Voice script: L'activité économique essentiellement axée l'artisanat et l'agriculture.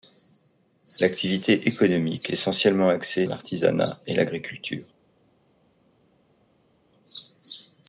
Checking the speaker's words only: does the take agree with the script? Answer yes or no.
yes